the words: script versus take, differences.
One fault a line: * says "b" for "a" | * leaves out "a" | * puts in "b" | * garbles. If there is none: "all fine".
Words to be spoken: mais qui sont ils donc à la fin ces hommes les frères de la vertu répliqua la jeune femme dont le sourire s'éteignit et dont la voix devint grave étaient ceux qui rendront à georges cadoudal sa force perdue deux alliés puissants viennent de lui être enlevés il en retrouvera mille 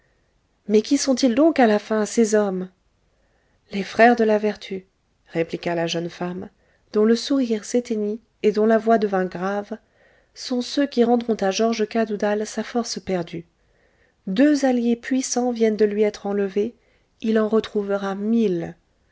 * says "sont" for "étaient"